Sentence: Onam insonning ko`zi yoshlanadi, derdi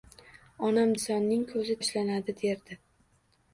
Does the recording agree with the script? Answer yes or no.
yes